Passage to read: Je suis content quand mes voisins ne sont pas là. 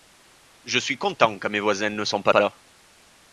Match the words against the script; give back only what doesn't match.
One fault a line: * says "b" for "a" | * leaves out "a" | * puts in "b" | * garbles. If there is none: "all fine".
* puts in "pas"